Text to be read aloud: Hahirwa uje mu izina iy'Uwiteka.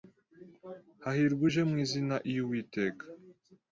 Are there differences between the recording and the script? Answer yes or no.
no